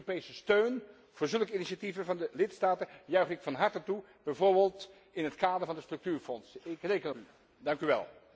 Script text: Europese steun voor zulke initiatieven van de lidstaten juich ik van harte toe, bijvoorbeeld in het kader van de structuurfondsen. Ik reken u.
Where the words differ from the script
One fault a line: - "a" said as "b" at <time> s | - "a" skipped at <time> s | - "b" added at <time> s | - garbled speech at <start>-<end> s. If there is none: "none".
none